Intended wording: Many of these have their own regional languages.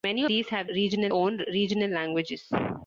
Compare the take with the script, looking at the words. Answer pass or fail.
fail